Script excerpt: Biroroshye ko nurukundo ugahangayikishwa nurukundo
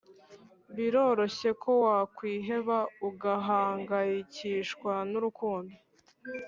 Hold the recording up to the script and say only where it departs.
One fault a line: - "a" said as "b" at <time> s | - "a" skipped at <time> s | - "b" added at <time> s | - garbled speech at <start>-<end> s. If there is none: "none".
- "nurukundo" said as "wakwiheba" at 1.8 s